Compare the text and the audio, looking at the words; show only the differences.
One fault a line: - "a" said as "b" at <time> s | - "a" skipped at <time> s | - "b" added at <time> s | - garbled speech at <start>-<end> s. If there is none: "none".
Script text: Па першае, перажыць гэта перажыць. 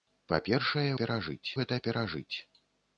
none